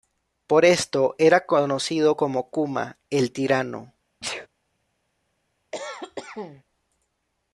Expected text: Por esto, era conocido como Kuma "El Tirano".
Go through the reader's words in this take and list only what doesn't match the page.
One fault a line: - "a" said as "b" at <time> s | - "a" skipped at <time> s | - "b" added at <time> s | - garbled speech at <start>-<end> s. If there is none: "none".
none